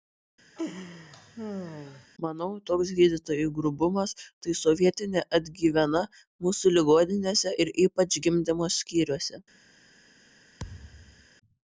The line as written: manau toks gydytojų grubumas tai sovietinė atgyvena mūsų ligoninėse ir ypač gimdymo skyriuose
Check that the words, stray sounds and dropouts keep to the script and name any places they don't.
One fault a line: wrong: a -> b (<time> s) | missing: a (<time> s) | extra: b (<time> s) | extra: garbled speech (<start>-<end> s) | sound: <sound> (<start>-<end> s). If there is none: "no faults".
sound: laugh (0.6-2.1 s)
sound: thud (10.6-11.3 s)